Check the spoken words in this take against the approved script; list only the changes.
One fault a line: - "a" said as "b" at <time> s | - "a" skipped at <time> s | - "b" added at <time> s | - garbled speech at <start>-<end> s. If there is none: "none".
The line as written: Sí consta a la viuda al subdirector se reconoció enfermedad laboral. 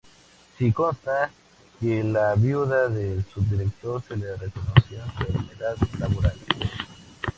- "que" added at 1.8 s
- "al" said as "del" at 2.9 s
- "le" added at 4.2 s